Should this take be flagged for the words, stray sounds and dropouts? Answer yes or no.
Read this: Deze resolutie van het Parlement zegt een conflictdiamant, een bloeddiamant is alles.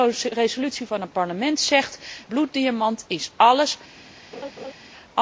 yes